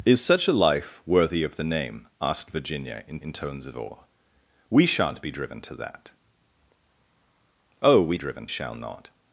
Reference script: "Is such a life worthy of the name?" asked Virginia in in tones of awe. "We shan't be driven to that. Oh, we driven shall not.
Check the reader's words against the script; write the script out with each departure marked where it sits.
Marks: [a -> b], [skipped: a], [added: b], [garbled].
"Is such a life worthy of the name?" asked Virginia in in tones of awe. "We shan't be driven to that. Oh, we driven shall not.